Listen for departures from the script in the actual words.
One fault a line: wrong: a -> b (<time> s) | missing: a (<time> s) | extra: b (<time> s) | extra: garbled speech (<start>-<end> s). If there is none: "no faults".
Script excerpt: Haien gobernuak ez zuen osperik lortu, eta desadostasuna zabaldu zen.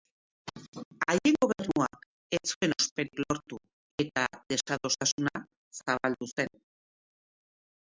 no faults